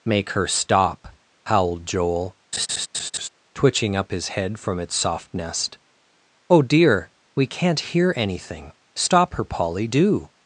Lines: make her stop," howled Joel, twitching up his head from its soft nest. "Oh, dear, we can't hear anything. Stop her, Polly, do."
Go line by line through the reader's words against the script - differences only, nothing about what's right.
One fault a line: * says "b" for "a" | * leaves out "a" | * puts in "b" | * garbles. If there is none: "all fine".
all fine